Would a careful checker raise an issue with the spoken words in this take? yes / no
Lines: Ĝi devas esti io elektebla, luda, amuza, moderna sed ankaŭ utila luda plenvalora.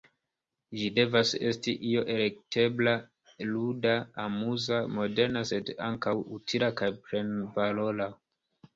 yes